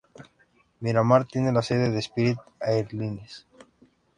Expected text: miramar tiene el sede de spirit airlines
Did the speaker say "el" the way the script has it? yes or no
no